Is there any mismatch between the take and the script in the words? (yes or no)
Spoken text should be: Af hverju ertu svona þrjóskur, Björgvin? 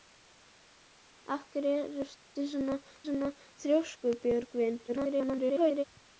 yes